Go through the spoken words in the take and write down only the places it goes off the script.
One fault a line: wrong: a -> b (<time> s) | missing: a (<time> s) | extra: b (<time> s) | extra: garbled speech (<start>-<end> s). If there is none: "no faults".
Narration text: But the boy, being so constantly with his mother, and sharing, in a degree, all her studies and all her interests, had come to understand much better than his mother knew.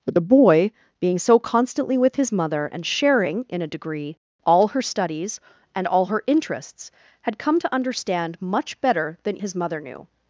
no faults